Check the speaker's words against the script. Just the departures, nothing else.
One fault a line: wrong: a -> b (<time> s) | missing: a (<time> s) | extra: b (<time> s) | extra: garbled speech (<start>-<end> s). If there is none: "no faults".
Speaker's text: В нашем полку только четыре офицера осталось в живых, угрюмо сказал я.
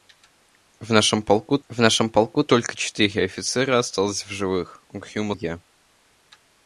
extra: в нашем полку (1.7 s)
missing: сказал (5.3 s)